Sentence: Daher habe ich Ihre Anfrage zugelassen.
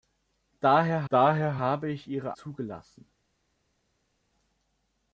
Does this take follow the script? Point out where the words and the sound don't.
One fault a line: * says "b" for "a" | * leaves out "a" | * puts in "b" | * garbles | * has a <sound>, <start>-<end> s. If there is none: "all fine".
* puts in "daher"
* leaves out "Anfrage"